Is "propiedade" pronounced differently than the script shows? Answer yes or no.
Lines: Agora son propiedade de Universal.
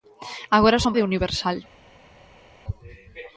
yes